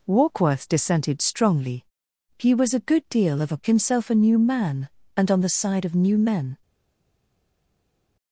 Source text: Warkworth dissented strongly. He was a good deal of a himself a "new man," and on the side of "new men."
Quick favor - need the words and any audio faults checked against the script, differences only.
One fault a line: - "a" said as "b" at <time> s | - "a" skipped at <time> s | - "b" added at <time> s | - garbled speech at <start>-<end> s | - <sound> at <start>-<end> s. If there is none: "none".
none